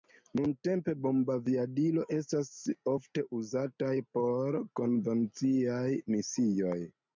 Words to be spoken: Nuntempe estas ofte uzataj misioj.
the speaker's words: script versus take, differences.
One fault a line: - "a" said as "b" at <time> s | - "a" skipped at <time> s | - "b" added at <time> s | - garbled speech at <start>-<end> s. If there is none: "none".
- "bombaviadiloj" added at 1.0 s
- "por konvenciaj" added at 4.2 s